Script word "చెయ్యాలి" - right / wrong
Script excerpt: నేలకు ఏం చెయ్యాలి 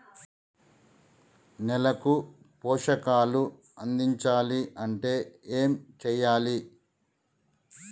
right